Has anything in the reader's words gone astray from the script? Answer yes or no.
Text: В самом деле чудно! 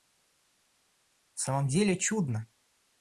no